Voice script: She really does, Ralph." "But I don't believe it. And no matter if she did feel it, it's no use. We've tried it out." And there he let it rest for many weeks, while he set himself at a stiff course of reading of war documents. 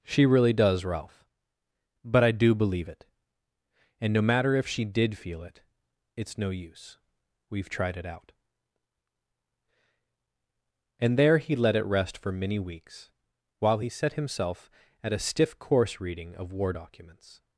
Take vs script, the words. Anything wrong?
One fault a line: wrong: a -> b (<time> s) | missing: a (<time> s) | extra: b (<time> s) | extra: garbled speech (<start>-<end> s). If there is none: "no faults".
wrong: don't -> do (2.3 s)
missing: of (16.0 s)